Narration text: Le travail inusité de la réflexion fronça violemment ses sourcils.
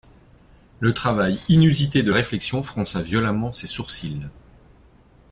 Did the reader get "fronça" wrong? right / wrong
right